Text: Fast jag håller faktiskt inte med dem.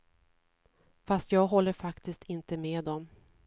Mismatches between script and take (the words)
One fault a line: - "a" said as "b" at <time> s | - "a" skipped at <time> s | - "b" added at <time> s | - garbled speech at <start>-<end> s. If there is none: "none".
none